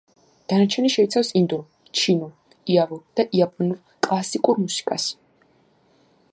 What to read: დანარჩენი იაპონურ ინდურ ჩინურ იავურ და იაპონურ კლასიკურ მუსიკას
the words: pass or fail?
fail